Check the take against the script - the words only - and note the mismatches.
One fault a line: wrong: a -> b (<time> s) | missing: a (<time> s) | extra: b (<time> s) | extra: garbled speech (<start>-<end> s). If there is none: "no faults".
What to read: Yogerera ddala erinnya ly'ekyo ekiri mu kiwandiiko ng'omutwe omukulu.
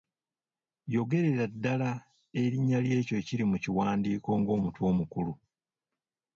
no faults